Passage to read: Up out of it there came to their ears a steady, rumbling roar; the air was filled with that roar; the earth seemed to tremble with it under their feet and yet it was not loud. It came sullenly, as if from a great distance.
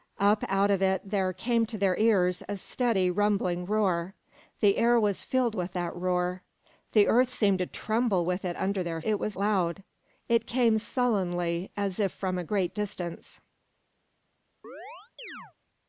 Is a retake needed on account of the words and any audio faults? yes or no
yes